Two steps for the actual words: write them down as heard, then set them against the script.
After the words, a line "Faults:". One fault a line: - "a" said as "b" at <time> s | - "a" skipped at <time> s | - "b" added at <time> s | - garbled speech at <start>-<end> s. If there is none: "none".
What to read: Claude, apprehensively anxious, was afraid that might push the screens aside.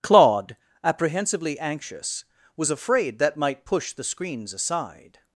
Claude, apprehensively anxious, was afraid that might push the screens aside.
Faults:
none